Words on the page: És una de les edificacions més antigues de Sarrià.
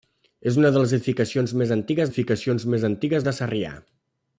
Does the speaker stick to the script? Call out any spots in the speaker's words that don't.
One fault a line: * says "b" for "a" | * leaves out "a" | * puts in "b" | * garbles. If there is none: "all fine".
* puts in "edificacions més antigues"